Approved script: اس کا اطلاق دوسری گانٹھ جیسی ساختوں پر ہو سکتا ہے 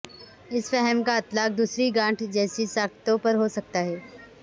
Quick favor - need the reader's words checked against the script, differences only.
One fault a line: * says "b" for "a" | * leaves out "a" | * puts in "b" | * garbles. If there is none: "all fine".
* puts in "فہم"